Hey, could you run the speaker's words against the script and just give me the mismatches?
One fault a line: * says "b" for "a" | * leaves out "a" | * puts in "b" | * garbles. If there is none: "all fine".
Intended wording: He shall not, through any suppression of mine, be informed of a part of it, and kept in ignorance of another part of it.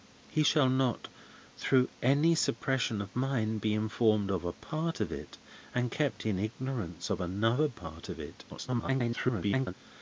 * garbles